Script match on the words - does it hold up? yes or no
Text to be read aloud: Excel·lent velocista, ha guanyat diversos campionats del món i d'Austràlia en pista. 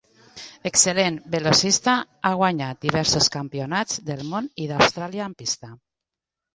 yes